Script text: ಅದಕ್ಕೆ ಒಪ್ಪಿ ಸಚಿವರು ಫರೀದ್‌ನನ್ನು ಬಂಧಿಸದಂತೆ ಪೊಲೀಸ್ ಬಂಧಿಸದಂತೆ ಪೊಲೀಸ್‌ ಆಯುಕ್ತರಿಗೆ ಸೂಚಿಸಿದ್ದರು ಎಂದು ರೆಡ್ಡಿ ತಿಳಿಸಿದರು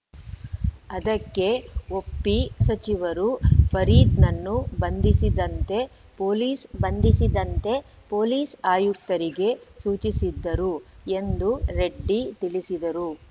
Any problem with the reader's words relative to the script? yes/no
no